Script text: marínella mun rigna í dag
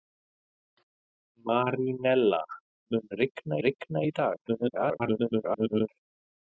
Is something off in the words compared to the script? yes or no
yes